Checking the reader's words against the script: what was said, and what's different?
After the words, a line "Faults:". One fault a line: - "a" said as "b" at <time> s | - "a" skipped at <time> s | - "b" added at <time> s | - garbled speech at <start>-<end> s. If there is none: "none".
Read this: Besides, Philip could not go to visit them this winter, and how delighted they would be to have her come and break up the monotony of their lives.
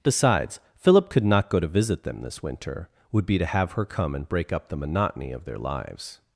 Besides, Philip could not go to visit them this winter, would be to have her come and break up the monotony of their lives.
Faults:
- "and how delighted they" skipped at 2.9 s